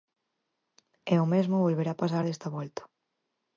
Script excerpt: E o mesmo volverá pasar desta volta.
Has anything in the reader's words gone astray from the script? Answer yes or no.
no